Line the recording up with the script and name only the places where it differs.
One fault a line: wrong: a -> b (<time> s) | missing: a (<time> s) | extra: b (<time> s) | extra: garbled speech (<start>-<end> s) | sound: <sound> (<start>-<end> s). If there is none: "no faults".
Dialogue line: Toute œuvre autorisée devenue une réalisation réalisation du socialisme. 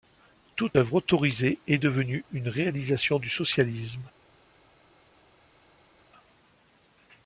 extra: est (1.7 s)
missing: réalisation (3.2 s)